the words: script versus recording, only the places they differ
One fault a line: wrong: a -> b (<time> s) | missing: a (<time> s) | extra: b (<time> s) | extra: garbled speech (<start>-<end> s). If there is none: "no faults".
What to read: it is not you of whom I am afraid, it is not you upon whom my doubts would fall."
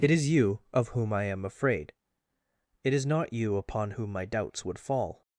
missing: not (0.3 s)